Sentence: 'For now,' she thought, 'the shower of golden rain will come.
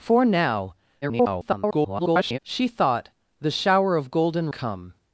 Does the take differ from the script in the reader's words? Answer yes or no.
yes